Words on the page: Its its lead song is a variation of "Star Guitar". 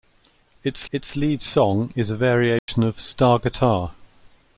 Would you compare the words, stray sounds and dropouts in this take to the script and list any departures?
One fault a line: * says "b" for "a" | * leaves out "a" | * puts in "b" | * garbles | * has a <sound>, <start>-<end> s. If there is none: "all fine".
* has a dropout, 2.6-2.7 s